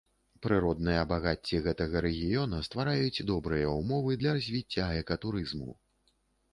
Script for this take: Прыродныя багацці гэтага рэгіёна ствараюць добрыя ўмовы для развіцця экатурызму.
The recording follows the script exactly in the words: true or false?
true